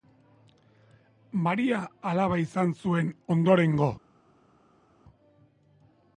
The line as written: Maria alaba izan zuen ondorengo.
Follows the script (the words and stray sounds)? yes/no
yes